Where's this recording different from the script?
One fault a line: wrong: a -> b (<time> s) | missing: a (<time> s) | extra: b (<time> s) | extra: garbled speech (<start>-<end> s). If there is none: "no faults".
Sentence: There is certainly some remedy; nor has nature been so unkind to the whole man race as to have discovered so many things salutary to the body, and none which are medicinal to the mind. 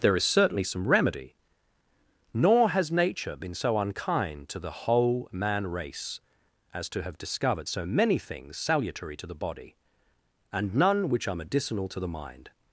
no faults